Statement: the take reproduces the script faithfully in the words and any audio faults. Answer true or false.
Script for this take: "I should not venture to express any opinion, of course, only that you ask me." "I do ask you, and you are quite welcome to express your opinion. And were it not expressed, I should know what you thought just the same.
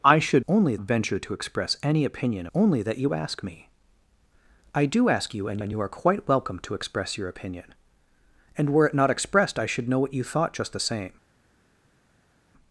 false